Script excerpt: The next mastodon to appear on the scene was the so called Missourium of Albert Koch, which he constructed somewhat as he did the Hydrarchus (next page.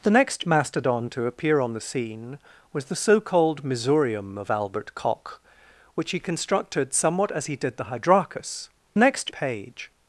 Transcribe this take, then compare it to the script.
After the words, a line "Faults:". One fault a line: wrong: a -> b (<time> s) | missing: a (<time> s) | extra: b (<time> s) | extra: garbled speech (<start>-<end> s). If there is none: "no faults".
The next mastodon to appear on the scene was the so called Missourium of Albert Koch, which he constructed somewhat as he did the Hydrarchus (next page.
Faults:
no faults